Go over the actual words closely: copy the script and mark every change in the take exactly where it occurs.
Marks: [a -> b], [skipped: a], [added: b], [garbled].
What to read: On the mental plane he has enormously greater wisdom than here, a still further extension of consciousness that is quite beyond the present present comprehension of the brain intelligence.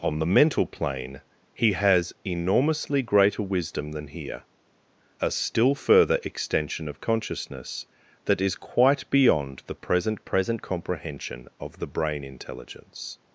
On the mental plane he has enormously greater wisdom than here, a still further extension of consciousness that is quite beyond the present present comprehension of the brain intelligence.